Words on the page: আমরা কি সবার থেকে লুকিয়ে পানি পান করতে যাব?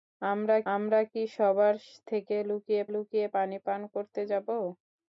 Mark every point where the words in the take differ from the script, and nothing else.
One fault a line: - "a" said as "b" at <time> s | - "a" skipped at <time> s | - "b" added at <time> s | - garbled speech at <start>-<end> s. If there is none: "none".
- "আমরা" added at 0.7 s
- "লুকিয়ে" added at 2.9 s